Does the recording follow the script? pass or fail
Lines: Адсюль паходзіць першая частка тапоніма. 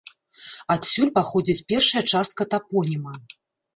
pass